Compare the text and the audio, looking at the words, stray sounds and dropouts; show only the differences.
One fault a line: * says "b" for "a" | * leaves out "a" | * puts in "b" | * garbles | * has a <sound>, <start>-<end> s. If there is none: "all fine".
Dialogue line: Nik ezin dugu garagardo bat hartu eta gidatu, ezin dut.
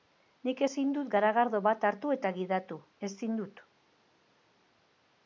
* says "dut" for "dugu"